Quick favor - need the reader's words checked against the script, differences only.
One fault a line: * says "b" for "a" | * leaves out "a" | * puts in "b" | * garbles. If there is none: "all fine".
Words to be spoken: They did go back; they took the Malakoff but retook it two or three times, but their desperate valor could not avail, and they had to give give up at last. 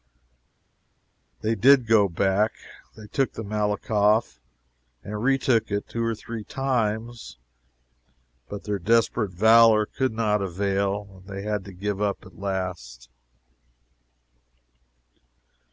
* says "and" for "but"
* leaves out "give"